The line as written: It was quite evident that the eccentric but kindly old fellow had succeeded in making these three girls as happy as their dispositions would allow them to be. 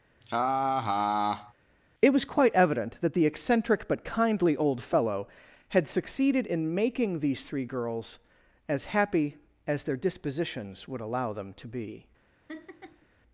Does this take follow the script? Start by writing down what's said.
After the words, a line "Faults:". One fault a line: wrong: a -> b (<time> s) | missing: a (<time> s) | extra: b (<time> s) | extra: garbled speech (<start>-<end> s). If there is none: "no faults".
It was quite evident that the eccentric but kindly old fellow had succeeded in making these three girls as happy as their dispositions would allow them to be.
Faults:
no faults